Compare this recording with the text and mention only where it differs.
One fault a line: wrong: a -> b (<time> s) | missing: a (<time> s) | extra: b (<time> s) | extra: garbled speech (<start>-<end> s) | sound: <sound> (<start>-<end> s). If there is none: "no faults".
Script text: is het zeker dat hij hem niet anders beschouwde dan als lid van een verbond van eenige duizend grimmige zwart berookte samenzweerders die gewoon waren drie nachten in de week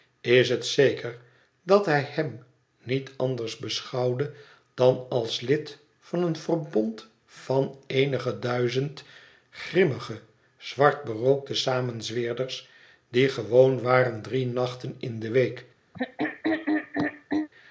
sound: throat clearing (15.9-17.5 s)